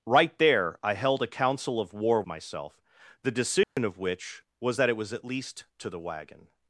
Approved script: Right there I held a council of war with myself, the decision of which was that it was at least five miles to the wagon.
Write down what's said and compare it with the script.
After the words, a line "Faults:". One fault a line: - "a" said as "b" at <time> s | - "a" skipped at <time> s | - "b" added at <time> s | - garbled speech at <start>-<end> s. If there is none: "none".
Right there I held a council of war myself, the decision of which was that it was at least to the wagon.
Faults:
- "with" skipped at 2.2 s
- "five miles" skipped at 5.6 s